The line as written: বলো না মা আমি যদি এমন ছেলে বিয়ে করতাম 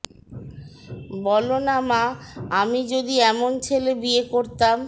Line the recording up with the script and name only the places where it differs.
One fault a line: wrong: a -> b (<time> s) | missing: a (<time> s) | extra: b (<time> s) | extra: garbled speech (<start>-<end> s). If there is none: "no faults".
no faults